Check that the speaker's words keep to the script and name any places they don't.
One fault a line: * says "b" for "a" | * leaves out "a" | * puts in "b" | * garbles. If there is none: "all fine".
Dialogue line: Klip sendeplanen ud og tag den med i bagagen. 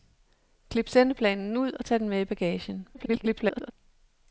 * garbles